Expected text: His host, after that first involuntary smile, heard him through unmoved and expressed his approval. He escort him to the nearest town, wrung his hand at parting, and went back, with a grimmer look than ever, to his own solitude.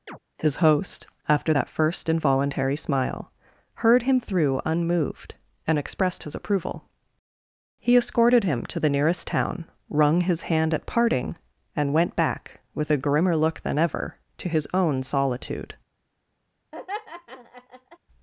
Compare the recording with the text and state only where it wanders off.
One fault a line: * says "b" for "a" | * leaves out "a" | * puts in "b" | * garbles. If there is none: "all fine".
* says "escorted" for "escort"